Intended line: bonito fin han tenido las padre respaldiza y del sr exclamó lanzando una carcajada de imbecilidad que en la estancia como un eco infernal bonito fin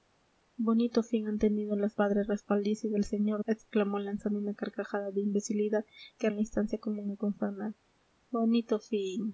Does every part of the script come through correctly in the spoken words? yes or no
yes